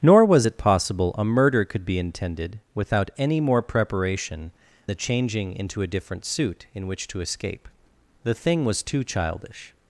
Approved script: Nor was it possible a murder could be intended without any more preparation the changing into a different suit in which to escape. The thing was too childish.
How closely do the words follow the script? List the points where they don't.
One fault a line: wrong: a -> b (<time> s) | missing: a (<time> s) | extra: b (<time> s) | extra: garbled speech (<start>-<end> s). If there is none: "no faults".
no faults